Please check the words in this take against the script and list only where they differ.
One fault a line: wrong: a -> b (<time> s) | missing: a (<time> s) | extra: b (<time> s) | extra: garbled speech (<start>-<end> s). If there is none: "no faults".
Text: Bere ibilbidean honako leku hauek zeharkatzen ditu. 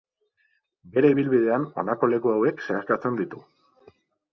no faults